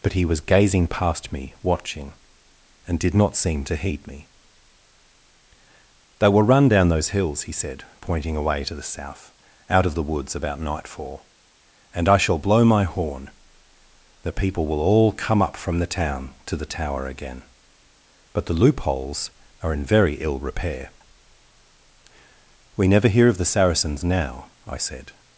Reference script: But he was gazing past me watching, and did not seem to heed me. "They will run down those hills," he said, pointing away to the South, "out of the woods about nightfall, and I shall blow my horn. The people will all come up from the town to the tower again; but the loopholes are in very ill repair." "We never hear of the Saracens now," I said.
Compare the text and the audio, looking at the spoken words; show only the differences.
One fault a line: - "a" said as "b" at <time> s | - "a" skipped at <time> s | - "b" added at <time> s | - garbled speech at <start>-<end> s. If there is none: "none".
none